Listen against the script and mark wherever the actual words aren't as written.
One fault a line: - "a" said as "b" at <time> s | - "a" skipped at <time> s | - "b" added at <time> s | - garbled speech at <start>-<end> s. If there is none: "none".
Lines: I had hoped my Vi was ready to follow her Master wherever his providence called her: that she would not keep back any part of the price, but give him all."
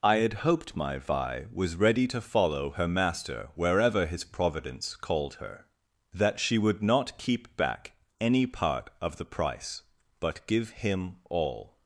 none